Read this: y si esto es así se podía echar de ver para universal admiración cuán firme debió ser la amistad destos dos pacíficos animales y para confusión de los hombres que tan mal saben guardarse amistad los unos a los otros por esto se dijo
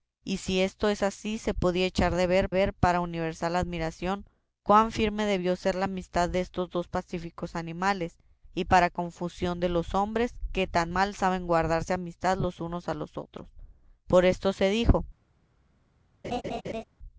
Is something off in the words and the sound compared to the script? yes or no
yes